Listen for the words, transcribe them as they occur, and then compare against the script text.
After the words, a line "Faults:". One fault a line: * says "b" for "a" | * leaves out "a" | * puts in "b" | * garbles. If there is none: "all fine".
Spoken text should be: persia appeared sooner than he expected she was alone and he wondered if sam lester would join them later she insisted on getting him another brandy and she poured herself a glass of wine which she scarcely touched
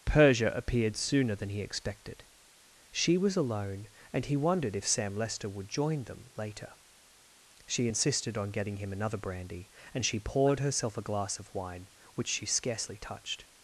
persia appeared sooner than he expected she was alone and he wondered if sam lester would join them later she insisted on getting him another brandy and she poured herself a glass of wine which she scarcely touched
Faults:
all fine